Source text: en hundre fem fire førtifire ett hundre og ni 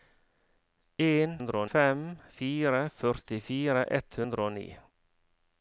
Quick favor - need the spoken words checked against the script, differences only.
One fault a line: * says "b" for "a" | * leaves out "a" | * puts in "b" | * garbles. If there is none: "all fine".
all fine